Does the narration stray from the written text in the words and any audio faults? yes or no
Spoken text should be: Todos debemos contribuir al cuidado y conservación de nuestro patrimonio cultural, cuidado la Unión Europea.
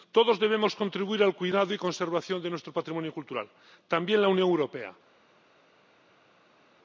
yes